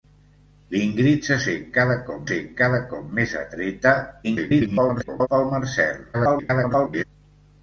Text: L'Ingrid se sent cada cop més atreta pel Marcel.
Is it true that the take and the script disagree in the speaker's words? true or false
true